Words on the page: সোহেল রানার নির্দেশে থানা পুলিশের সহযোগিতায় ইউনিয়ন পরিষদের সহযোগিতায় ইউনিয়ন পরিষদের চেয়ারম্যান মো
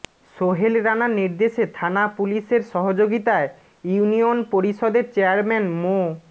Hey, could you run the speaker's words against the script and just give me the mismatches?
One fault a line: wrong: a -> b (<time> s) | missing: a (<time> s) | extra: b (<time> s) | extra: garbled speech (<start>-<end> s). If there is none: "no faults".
missing: সহযোগিতায় ইউনিয়ন পরিষদের (5.0 s)